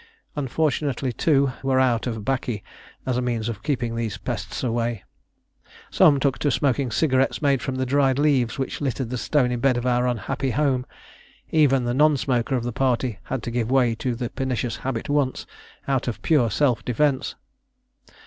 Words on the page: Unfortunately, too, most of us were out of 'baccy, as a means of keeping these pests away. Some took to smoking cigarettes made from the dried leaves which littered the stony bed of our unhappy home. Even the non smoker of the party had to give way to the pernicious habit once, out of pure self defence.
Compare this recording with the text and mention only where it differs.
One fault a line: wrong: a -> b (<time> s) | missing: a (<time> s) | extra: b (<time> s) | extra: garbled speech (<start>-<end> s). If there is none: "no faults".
missing: most of us (1.5 s)